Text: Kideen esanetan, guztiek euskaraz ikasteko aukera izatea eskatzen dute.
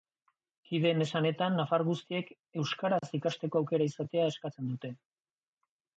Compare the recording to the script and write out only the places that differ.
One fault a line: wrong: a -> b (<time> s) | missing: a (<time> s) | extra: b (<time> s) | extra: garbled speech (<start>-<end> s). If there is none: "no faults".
extra: nafar (1.6 s)